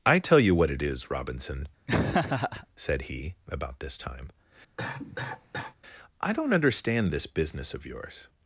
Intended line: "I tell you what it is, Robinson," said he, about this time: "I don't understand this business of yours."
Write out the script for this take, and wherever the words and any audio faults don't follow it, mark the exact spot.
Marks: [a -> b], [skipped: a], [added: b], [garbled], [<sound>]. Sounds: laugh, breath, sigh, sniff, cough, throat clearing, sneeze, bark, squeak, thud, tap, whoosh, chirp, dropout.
"I tell you what it is, Robinson," [laugh] said he, about this time: [cough] "I don't understand this business of yours."